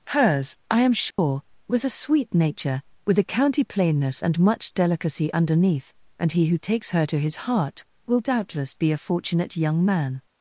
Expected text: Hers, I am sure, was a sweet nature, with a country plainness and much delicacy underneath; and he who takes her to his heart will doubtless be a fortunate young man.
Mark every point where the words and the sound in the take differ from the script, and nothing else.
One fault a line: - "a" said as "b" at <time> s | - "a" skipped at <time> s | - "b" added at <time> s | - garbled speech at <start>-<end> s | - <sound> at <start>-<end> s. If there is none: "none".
- dropout at 1.1-1.2 s
- "country" said as "county" at 3.2 s